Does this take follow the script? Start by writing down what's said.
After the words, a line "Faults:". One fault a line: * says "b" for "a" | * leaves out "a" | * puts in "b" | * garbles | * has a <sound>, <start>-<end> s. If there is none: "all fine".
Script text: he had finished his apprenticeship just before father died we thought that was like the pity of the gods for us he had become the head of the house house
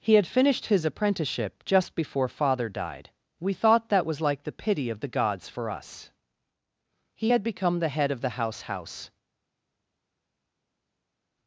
he had finished his apprenticeship just before father died we thought that was like the pity of the gods for us he had become the head of the house house
Faults:
all fine